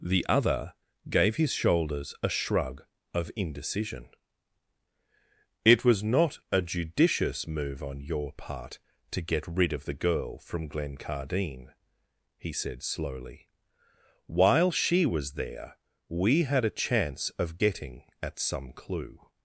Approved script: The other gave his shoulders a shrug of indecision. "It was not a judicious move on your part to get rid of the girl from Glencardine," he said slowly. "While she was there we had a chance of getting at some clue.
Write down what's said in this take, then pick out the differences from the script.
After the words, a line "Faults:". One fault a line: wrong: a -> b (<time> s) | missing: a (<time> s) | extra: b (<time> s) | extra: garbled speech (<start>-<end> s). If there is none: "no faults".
The other gave his shoulders a shrug of indecision. "It was not a judicious move on your part to get rid of the girl from Glencardine," he said slowly. "While she was there we had a chance of getting at some clue.
Faults:
no faults